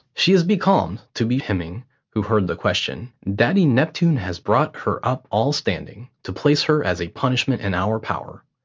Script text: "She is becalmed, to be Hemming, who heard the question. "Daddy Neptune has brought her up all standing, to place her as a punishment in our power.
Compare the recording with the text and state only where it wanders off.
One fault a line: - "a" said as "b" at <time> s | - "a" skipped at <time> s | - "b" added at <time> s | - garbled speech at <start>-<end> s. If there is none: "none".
none